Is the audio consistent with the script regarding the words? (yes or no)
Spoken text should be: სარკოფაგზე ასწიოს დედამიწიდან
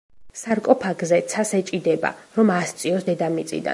no